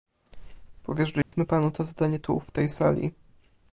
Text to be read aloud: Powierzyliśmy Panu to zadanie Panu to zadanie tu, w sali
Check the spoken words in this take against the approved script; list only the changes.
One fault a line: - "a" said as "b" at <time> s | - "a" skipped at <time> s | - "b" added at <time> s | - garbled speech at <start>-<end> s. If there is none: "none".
- "Panu to zadanie" skipped at 2.2 s
- "tej" added at 2.5 s